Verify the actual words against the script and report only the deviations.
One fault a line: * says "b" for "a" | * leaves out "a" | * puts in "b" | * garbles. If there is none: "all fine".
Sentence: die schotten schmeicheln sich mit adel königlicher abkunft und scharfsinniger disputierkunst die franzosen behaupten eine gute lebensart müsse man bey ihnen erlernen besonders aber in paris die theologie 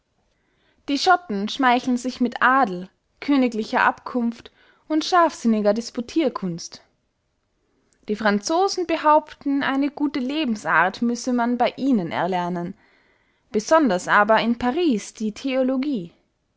all fine